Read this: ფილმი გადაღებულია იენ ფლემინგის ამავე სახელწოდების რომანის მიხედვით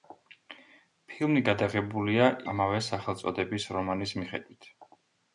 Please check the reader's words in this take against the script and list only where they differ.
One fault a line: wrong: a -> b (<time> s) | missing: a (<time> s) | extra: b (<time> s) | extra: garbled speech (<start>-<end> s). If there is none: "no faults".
missing: იენ ფლემინგის (2.3 s)